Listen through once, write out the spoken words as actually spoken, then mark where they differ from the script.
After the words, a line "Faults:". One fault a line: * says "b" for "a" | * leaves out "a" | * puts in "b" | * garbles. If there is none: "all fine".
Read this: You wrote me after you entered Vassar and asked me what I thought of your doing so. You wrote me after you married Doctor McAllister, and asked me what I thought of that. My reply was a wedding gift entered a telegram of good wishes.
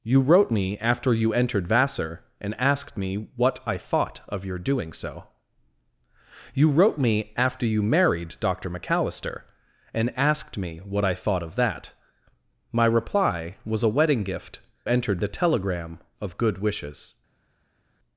You wrote me after you entered Vassar and asked me what I thought of your doing so. You wrote me after you married Doctor McAllister, and asked me what I thought of that. My reply was a wedding gift entered a telegram of good wishes.
Faults:
all fine